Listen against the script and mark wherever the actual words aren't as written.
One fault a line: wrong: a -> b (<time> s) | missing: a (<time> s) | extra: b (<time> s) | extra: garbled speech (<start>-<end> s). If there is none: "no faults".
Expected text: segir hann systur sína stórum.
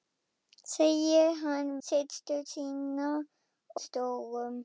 no faults